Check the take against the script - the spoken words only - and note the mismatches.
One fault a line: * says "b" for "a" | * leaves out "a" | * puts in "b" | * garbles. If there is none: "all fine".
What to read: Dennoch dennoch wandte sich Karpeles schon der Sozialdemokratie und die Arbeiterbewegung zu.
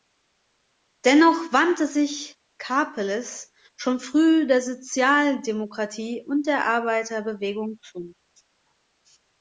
* leaves out "dennoch"
* puts in "früh"
* says "der" for "die"